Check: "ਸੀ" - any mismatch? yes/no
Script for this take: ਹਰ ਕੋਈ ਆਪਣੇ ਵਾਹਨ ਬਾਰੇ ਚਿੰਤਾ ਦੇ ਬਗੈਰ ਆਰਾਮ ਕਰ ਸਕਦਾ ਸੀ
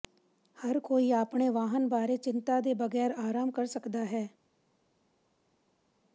yes